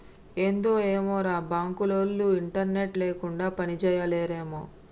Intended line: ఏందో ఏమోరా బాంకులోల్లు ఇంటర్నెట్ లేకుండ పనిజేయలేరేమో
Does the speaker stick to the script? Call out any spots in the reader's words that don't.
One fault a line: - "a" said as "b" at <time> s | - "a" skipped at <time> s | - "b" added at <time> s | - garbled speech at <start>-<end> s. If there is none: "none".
none